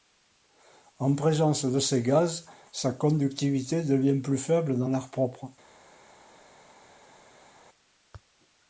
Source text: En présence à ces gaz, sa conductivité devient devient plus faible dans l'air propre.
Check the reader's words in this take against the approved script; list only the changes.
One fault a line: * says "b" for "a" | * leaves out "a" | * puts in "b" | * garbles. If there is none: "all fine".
* says "de" for "à"
* leaves out "devient"